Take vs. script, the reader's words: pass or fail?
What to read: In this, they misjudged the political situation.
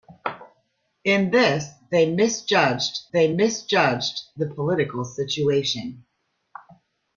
fail